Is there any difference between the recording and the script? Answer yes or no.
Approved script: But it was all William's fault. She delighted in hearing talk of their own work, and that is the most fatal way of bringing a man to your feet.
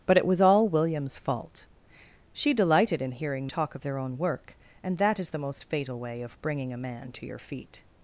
no